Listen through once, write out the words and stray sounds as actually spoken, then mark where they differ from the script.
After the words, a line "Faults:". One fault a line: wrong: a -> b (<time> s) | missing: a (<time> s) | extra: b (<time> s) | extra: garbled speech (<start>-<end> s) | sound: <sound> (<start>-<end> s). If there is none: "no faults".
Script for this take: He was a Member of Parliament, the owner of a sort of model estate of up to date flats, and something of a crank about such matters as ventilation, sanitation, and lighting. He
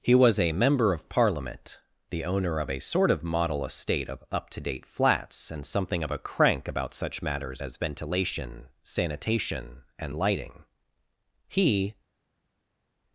He was a Member of Parliament, the owner of a sort of model estate of up to date flats, and something of a crank about such matters as ventilation, sanitation, and lighting. He
Faults:
no faults